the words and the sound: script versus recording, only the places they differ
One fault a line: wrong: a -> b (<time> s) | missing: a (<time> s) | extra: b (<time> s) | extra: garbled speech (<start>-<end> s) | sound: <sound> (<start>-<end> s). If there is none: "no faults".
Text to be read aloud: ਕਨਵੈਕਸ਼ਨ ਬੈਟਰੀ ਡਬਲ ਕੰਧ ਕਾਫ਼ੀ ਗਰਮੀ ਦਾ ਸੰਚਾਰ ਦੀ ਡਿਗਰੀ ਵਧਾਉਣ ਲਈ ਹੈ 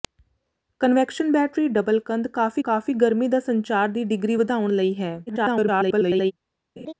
extra: ਕਾਫ਼ੀ (2.6 s)
extra: garbled speech (5.3-6.3 s)
sound: laugh (6.8-6.9 s)